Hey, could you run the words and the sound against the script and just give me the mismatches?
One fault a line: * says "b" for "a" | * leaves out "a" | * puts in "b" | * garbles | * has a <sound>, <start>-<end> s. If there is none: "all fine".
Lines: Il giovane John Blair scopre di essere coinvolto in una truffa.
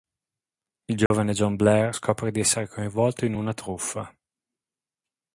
* has a dropout, 1.1-1.1 s